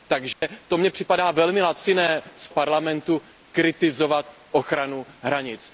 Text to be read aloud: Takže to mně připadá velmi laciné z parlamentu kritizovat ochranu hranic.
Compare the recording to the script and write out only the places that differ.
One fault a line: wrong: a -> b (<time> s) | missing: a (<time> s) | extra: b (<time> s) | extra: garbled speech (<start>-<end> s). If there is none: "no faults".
no faults